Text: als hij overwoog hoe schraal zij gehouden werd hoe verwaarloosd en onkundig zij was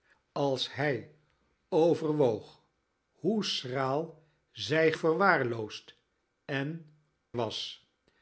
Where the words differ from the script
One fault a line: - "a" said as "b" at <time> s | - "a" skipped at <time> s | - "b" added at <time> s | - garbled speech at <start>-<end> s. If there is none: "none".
- "gehouden werd hoe" skipped at 4.9 s
- "onkundig zij" skipped at 6.9 s